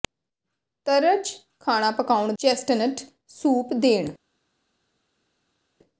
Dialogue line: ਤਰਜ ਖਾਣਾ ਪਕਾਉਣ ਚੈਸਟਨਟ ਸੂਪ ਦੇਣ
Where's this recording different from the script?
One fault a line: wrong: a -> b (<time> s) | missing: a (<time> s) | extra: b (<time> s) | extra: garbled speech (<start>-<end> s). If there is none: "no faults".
no faults